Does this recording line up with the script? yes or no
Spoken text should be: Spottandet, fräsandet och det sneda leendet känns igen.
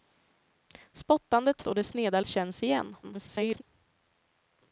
no